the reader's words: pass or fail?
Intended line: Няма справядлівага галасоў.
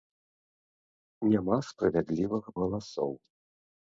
pass